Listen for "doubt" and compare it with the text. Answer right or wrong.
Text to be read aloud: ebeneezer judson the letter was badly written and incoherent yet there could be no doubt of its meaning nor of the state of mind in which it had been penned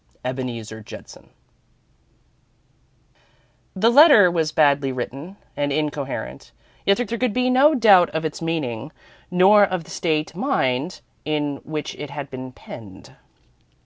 right